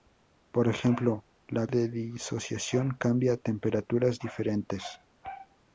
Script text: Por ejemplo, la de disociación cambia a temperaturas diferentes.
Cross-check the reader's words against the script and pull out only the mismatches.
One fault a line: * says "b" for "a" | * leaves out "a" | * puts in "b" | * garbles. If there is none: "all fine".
all fine